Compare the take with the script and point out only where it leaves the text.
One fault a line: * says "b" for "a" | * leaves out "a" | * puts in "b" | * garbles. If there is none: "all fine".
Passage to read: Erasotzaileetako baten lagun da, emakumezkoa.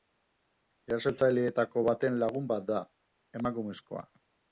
* puts in "bat"